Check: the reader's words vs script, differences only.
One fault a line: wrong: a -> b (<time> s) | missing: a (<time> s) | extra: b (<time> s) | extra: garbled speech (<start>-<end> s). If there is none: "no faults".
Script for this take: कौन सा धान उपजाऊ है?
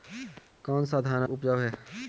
no faults